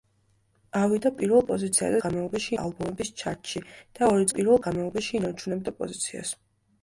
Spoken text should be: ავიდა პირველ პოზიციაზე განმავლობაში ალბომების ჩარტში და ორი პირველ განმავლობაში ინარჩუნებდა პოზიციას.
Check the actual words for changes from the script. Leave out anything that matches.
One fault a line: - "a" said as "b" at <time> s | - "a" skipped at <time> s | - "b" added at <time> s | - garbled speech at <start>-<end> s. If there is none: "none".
none